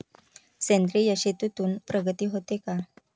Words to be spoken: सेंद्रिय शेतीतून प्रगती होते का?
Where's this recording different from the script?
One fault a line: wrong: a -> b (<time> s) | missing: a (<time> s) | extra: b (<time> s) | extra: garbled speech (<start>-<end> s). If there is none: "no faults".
no faults